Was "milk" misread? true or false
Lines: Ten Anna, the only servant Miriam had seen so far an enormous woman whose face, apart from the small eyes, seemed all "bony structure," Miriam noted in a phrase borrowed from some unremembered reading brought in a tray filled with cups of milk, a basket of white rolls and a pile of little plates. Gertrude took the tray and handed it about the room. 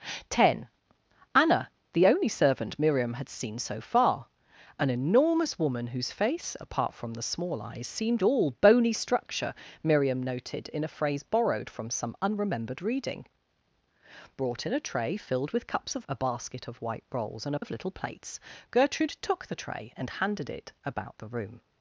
true